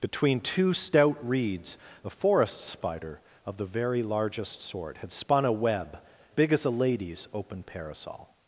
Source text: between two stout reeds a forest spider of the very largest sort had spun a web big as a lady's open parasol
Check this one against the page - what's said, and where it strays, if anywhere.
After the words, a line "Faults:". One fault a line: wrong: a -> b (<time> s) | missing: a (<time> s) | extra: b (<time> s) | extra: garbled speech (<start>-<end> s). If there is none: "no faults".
between two stout reeds a forest spider of the very largest sort had spun a web big as a lady's open parasol
Faults:
no faults